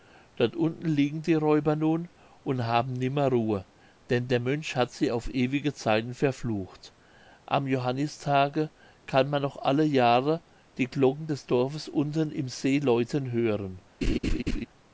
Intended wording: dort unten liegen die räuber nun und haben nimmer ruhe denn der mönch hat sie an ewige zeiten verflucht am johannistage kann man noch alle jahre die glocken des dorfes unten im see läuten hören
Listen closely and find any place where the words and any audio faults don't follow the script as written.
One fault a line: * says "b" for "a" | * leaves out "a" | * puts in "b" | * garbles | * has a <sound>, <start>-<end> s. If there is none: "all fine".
* says "auf" for "an"
* has a laugh, 14.0-14.7 s